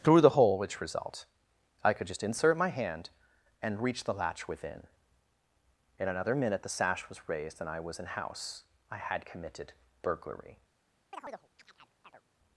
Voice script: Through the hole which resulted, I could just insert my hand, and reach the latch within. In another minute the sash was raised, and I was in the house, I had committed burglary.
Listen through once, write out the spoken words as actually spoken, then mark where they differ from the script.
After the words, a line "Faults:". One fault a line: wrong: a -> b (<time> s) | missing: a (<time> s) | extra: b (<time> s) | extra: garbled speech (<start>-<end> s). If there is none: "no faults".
Through the hole which result, I could just insert my hand, and reach the latch within. In another minute the sash was raised, and I was in house, I had committed burglary.
Faults:
wrong: resulted -> result (0.8 s)
missing: the (8.1 s)